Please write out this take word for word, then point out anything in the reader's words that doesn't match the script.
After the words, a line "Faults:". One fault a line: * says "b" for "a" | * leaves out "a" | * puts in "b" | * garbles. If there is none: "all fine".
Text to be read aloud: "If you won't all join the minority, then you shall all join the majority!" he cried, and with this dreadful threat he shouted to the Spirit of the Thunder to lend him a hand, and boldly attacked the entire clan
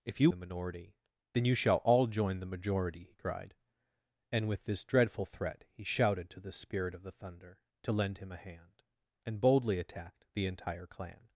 "If you the minority, then you shall all join the majority!" he cried, and with this dreadful threat he shouted to the Spirit of the Thunder to lend him a hand, and boldly attacked the entire clan
Faults:
* leaves out "won't all join"